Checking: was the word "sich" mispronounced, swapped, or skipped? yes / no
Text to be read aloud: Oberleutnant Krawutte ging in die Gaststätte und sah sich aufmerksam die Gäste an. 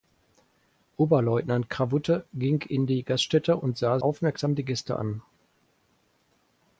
yes